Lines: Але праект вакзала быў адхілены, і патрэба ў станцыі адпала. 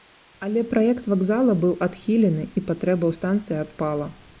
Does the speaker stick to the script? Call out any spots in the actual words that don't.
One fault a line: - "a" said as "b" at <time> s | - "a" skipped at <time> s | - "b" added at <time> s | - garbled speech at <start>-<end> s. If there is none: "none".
none